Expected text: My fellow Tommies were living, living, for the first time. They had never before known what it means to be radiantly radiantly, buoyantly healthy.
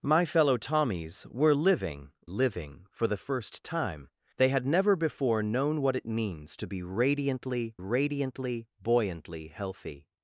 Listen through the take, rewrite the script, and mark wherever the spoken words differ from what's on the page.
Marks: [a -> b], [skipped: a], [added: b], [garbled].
My fellow Tommies were living, living, for the first time. They had never before known what it means to be radiantly radiantly, buoyantly healthy.